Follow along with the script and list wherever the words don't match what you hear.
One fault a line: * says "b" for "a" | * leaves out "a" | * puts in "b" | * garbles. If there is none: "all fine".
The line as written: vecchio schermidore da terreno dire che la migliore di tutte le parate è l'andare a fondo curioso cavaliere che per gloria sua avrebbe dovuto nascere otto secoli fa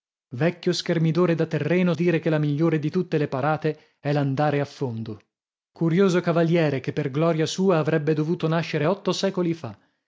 all fine